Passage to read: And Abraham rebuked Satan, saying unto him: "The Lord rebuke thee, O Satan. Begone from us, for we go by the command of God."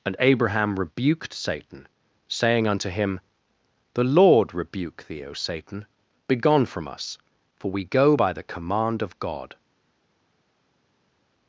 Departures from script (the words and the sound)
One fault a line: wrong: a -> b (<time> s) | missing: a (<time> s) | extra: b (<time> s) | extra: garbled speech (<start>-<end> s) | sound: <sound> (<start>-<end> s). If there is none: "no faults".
no faults